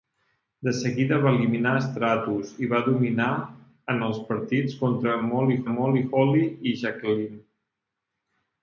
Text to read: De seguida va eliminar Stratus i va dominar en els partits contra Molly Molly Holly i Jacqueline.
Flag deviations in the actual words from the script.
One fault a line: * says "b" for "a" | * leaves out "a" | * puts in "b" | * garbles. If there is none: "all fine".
all fine